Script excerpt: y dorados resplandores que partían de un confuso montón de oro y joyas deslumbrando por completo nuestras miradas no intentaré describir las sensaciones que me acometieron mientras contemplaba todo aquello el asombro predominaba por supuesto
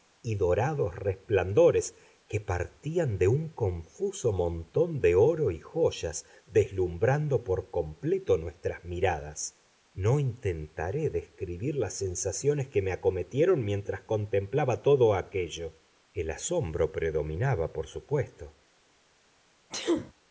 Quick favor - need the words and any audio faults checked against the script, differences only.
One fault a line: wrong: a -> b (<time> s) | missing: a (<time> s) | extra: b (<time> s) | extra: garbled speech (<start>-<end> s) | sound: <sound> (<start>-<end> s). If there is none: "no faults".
sound: sneeze (19.7-20.1 s)